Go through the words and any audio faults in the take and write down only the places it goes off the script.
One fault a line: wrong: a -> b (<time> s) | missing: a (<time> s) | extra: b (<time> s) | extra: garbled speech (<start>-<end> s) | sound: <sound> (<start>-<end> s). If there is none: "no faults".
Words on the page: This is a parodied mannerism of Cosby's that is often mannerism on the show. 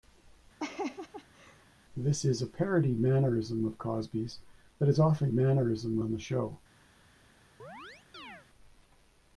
sound: laugh (0.6-1.7 s)
sound: chirp (7.6-8.5 s)